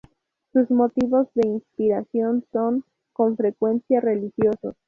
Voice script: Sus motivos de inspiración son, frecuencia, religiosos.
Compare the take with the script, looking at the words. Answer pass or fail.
fail